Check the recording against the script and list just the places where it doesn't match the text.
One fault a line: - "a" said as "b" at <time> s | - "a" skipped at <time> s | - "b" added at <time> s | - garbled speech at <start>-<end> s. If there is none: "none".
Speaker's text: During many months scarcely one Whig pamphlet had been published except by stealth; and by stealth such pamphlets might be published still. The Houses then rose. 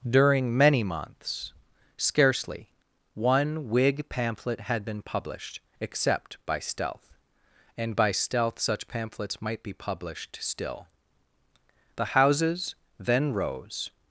none